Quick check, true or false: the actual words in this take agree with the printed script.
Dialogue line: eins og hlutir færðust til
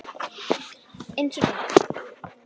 false